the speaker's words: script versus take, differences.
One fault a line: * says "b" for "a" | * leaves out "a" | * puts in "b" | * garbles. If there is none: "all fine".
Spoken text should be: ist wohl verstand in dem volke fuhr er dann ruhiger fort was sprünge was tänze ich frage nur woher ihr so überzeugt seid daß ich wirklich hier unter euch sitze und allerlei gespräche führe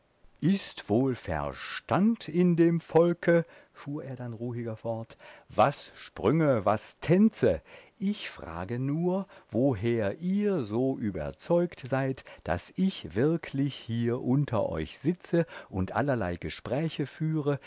all fine